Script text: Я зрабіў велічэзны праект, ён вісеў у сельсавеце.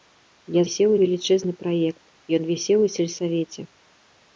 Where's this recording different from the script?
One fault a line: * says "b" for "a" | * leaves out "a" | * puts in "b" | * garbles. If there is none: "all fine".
* says "вісеў" for "зрабіў"